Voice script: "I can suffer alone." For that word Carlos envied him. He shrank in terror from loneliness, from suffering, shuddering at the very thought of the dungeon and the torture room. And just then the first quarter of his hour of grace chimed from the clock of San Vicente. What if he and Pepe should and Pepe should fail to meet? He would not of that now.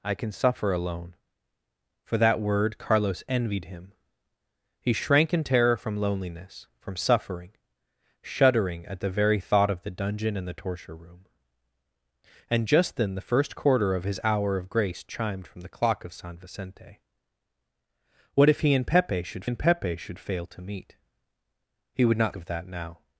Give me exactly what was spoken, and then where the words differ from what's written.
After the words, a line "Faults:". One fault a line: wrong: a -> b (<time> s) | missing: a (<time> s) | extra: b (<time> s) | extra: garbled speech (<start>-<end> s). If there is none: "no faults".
"I can suffer alone." For that word Carlos envied him. He shrank in terror from loneliness, from suffering, shuddering at the very thought of the dungeon and the torture room. And just then the first quarter of his hour of grace chimed from the clock of San Vicente. What if he and Pepe should and Pepe should fail to meet? He would not of that now.
Faults:
no faults